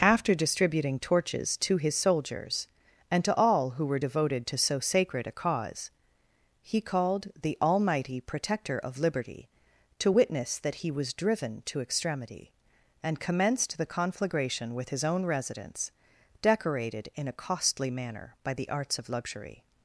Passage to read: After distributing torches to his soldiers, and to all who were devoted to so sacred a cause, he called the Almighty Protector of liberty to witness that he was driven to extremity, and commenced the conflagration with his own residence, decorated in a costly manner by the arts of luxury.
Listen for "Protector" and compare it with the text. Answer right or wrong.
right